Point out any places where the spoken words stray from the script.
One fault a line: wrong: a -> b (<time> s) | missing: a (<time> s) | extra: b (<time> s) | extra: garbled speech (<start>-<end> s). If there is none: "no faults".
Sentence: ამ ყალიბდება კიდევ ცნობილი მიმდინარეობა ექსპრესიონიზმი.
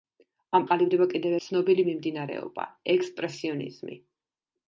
no faults